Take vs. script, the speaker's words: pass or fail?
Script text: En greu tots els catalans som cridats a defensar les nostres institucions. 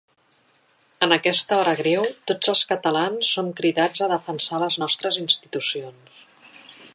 fail